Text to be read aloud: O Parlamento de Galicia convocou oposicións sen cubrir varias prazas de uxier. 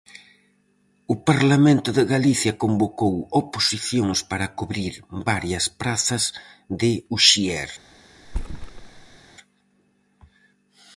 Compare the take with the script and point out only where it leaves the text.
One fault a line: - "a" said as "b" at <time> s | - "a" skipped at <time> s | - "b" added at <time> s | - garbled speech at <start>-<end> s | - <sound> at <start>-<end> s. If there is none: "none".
- "sen" said as "para" at 4.3 s
- thud at 8.2-9.2 s